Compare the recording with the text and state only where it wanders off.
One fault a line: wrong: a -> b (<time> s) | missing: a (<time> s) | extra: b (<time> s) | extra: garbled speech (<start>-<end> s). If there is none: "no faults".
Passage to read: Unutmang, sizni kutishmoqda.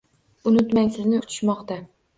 no faults